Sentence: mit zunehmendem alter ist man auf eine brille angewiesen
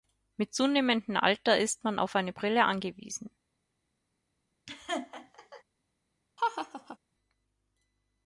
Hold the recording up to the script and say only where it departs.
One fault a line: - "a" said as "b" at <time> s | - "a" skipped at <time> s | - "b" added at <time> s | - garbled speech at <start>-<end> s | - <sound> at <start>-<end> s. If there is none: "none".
- laugh at 4.7-5.6 s
- laugh at 6.4-7.0 s